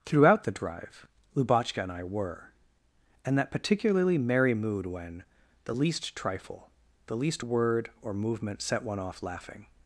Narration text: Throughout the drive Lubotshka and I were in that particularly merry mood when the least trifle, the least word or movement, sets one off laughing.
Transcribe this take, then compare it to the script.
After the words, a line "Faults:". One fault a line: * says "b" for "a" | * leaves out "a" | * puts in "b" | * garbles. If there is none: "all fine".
Throughout the drive Lubotshka and I were and that particularly merry mood when the least trifle, the least word or movement, set one off laughing.
Faults:
* says "and" for "in"
* says "set" for "sets"